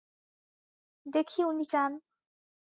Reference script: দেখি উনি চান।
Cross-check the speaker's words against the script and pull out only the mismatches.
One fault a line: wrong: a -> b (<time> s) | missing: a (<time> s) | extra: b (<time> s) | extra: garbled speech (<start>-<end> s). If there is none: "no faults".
no faults